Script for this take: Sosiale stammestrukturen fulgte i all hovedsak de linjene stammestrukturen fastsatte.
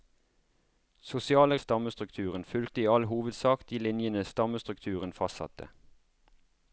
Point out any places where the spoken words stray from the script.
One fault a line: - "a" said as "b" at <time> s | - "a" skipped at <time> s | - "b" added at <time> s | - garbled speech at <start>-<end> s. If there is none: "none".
none